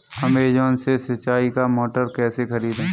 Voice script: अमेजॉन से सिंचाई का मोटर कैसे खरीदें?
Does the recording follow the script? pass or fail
pass